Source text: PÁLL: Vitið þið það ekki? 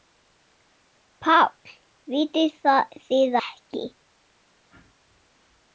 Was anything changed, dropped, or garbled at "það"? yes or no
yes